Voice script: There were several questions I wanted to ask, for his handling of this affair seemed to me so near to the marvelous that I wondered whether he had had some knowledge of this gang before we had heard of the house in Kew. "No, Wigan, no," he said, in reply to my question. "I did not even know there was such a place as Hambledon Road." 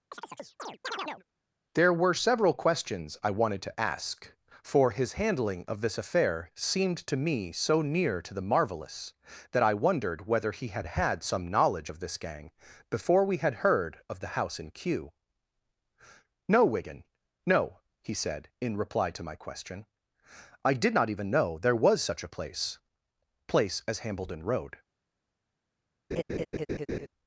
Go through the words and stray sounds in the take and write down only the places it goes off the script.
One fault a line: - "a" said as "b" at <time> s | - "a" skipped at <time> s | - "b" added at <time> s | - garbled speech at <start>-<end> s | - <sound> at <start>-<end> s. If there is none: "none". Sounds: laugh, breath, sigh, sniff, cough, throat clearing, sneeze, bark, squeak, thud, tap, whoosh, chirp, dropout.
- chirp at 0.1-1.2 s
- "place" added at 23.5 s
- laugh at 26.1-27.1 s